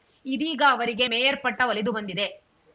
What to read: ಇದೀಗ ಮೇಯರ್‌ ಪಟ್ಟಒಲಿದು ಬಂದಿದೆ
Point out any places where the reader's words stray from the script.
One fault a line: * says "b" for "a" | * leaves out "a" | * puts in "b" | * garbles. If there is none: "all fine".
* puts in "ಅವರಿಗೆ"